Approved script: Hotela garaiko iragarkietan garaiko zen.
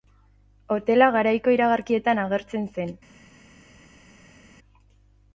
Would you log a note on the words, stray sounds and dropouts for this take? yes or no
yes